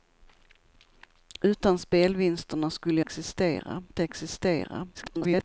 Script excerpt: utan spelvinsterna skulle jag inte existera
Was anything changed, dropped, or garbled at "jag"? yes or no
yes